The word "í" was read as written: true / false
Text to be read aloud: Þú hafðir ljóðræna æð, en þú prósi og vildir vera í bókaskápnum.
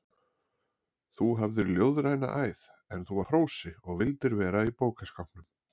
true